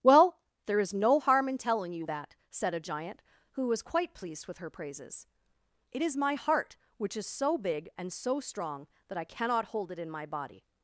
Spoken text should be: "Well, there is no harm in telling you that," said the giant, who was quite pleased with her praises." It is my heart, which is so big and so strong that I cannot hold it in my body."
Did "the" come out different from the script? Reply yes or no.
yes